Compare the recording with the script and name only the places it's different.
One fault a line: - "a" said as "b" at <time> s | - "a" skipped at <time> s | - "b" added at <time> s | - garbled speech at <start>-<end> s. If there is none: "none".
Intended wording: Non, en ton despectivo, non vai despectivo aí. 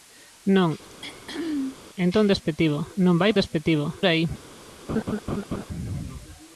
none